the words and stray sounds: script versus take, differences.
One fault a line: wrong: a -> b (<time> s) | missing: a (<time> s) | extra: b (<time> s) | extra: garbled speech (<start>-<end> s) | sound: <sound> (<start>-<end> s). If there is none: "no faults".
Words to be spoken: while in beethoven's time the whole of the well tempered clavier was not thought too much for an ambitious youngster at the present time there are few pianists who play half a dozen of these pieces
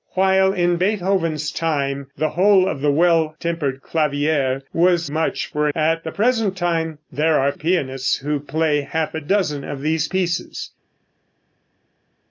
missing: not thought too (5.1 s)
missing: an ambitious youngster (5.7 s)
missing: few (7.5 s)